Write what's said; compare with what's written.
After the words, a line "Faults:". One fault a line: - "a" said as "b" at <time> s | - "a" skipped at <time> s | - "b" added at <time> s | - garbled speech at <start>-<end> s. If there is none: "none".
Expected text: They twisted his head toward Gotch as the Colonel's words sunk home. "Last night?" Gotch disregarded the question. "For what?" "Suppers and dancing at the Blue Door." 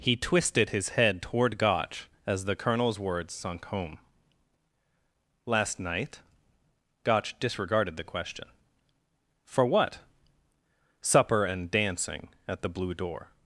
He twisted his head toward Gotch as the Colonel's words sunk home. "Last night?" Gotch disregarded the question. "For what?" "Supper and dancing at the Blue Door."
Faults:
- "They" said as "He" at 0.0 s
- "Suppers" said as "Supper" at 11.0 s